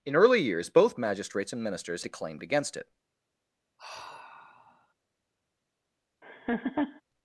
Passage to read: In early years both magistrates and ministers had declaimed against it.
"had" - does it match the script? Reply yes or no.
no